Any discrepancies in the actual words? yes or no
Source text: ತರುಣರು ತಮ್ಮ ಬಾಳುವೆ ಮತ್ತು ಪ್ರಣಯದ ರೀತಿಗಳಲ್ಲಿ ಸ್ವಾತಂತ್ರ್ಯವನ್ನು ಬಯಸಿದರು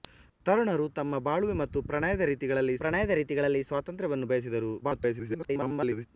yes